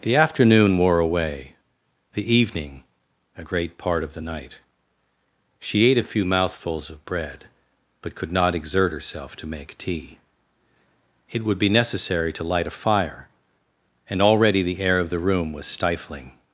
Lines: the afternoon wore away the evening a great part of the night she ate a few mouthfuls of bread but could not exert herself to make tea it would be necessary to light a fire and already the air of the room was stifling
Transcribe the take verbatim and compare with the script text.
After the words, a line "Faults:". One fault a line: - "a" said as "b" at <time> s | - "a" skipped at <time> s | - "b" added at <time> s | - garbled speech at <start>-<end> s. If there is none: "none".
the afternoon wore away the evening a great part of the night she ate a few mouthfuls of bread but could not exert herself to make tea it would be necessary to light a fire and already the air of the room was stifling
Faults:
none